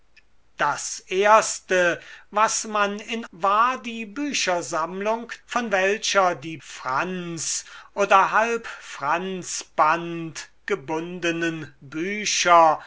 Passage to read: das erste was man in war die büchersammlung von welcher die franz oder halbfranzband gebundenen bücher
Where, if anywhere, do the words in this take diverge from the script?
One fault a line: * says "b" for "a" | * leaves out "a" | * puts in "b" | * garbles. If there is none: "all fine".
all fine